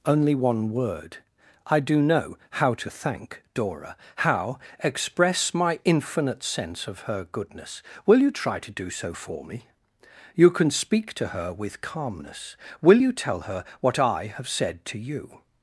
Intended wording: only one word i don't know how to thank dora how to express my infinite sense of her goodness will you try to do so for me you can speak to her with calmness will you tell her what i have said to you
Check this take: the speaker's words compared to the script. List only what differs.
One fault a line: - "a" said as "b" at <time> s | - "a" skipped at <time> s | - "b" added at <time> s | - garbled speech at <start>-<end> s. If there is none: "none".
- "don't" said as "do" at 1.8 s
- "to" skipped at 4.6 s